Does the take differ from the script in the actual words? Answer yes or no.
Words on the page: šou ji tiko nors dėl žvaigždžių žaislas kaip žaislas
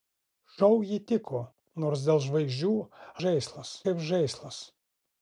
no